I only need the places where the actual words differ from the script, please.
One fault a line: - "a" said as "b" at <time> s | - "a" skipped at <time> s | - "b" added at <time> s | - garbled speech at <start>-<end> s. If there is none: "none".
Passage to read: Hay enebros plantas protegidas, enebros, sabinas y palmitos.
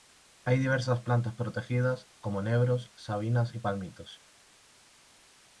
- "enebros" said as "diversas" at 0.6 s
- "como" added at 2.2 s